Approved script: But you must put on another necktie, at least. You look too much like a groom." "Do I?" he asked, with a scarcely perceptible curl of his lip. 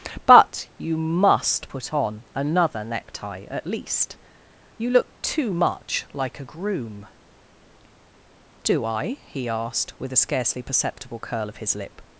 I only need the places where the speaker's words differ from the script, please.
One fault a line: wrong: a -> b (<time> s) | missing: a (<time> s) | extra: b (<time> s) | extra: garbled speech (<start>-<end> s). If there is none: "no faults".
no faults